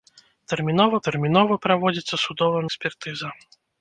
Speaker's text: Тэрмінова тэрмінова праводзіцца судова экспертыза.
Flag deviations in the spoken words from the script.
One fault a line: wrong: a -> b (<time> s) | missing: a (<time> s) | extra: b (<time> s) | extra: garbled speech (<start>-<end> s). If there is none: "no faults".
no faults